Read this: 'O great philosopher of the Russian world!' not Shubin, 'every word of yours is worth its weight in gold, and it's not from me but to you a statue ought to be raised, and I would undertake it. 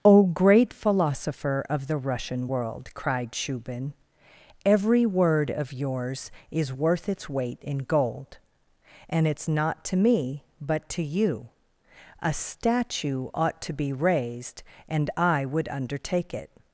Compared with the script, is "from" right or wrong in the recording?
wrong